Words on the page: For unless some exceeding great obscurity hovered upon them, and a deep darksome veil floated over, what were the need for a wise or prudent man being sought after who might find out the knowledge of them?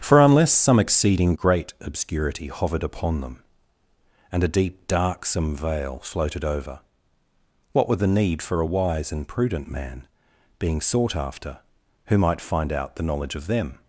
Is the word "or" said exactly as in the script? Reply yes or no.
no